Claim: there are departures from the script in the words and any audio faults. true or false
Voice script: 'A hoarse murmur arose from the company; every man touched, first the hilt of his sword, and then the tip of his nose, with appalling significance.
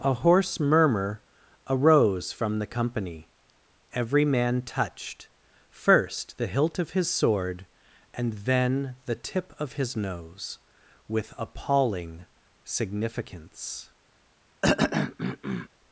true